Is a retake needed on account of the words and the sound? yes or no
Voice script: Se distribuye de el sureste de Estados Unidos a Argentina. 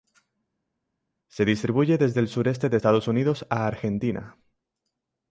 yes